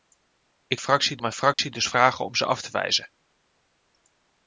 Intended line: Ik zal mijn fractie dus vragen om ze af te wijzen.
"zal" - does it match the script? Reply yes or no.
no